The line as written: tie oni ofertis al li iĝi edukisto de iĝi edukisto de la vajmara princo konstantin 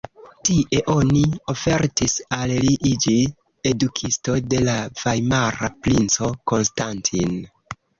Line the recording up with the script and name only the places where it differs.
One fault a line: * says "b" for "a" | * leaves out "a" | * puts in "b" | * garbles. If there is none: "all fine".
* leaves out "iĝi edukisto de"